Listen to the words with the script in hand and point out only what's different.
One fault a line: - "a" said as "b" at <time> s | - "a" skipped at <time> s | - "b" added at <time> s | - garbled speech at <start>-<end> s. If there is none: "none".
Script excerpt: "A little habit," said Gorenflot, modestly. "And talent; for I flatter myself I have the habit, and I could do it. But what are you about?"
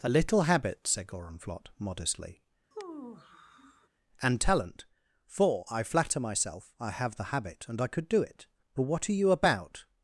none